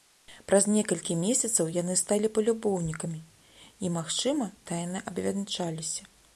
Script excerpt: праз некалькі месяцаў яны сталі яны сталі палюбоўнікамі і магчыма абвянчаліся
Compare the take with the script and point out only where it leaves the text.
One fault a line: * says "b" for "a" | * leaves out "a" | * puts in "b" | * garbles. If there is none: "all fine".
* leaves out "яны сталі"
* puts in "тайна"